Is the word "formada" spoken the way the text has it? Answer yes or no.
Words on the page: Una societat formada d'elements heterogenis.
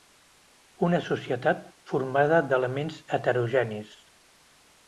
yes